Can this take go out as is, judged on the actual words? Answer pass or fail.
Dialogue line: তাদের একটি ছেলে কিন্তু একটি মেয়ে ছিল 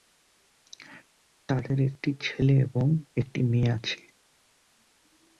fail